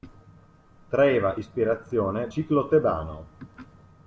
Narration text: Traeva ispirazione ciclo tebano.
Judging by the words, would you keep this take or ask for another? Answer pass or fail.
pass